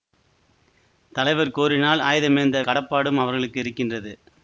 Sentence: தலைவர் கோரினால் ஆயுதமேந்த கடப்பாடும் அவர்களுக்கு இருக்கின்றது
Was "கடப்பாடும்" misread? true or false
false